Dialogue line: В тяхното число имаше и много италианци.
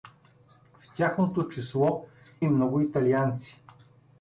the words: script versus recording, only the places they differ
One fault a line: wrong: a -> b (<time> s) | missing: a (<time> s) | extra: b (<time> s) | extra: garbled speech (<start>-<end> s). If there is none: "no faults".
missing: имаше (2.0 s)